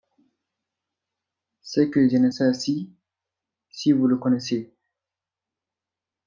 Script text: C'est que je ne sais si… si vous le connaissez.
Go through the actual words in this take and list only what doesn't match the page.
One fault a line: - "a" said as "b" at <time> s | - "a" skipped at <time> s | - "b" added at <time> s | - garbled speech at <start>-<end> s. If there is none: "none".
none